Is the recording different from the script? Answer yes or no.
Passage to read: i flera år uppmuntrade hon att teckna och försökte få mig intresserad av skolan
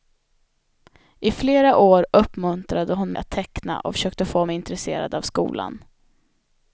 no